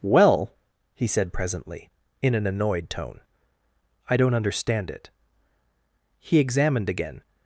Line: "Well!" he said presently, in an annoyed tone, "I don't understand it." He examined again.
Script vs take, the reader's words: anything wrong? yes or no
no